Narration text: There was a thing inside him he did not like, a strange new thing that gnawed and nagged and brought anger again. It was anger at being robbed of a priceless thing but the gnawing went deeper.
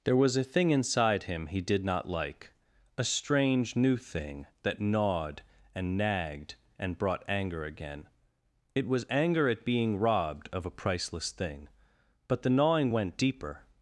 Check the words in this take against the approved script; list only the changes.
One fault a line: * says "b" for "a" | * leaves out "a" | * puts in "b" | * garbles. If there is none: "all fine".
all fine